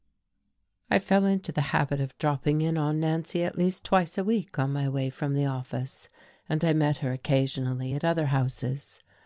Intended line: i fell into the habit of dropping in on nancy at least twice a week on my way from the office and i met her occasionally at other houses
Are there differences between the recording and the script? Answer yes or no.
no